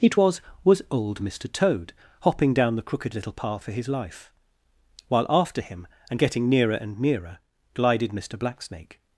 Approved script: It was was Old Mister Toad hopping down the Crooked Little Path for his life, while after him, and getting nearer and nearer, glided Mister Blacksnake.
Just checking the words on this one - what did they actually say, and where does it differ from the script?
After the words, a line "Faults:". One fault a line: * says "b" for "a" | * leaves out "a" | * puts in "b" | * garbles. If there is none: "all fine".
It was was Old Mister Toad hopping down the Crooked Little Path for his life, while after him, and getting nearer and nearer, glided Mister Blacksnake.
Faults:
all fine